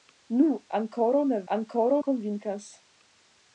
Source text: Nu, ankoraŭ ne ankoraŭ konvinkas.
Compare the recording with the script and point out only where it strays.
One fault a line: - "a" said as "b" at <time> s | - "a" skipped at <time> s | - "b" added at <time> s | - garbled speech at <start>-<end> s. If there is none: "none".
none